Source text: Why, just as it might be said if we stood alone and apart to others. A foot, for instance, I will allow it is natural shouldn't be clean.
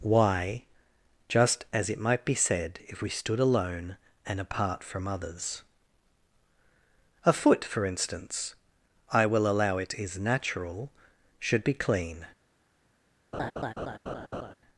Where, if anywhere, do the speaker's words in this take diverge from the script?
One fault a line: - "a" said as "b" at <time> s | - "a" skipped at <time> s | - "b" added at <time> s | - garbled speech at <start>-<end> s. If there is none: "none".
- "to" said as "from" at 4.8 s
- "shouldn't" said as "should" at 11.4 s